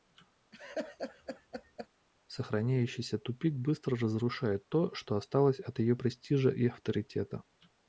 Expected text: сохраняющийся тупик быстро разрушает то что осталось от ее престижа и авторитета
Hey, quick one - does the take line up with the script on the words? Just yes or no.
yes